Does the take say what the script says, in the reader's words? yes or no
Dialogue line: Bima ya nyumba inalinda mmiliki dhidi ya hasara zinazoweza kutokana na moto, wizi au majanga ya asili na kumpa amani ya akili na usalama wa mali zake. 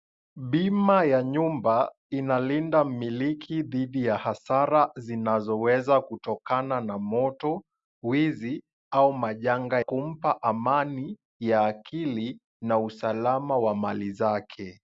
no